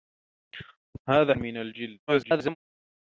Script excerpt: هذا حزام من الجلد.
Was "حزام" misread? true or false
true